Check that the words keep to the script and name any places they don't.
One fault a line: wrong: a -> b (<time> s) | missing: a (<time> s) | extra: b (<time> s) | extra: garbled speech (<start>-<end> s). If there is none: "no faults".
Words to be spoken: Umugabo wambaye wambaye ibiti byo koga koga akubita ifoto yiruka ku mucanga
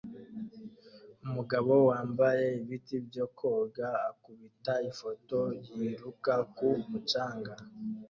missing: wambaye (2.5 s)
missing: koga (3.9 s)